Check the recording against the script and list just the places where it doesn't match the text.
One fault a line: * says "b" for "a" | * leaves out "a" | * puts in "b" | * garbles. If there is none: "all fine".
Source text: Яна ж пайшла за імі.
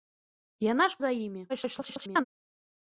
* leaves out "пайшла"
* garbles